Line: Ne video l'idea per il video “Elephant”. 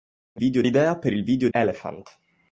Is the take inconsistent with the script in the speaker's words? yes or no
no